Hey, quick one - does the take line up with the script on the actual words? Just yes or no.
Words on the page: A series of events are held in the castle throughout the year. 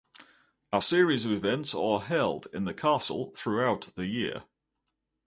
yes